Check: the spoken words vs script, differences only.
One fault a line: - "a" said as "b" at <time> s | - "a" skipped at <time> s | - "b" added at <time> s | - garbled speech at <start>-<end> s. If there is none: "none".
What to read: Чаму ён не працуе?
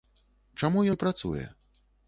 - "ён" skipped at 0.8 s